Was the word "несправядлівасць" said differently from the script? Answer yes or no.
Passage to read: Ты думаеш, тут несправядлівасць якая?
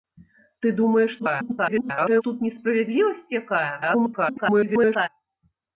no